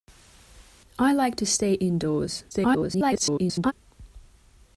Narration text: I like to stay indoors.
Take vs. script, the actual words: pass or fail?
fail